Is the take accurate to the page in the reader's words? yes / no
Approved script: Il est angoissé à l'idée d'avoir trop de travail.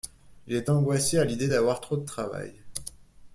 yes